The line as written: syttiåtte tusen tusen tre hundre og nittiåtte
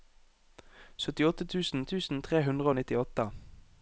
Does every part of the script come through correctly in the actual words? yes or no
yes